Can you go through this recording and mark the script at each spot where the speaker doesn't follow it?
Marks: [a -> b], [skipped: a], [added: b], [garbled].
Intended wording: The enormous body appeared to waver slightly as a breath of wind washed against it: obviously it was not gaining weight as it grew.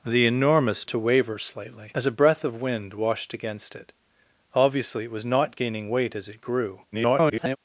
The enormous [skipped: body appeared] to waver slightly as a breath of wind washed against it: obviously it was not gaining weight as it grew. [garbled]